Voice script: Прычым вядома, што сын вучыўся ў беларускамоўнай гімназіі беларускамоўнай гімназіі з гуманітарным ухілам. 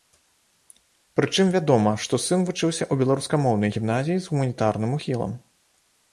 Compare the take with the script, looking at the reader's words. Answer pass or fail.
fail